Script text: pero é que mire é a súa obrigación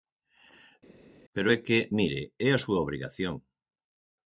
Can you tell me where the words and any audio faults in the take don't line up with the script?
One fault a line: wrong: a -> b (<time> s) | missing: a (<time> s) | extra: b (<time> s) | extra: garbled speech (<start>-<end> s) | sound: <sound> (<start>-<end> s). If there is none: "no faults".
no faults